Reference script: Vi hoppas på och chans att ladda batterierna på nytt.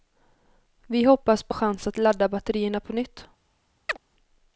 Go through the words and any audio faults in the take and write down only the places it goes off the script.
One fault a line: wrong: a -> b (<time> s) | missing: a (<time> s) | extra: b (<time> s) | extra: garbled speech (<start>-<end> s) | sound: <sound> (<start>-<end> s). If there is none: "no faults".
sound: chirp (3.9-4.0 s)